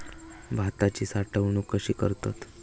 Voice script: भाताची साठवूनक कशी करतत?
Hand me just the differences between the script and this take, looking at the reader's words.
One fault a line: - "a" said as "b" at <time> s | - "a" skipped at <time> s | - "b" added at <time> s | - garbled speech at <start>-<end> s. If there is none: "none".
none